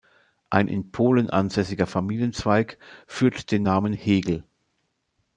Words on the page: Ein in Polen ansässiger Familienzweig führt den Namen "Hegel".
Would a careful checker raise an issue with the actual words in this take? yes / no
no